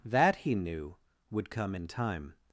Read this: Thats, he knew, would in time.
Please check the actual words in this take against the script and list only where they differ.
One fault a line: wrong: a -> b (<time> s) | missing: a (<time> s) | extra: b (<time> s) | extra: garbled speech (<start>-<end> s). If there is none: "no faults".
wrong: Thats -> That (0.0 s)
extra: come (1.5 s)